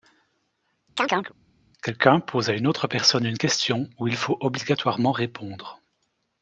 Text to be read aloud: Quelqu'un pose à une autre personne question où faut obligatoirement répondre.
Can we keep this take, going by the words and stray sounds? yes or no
no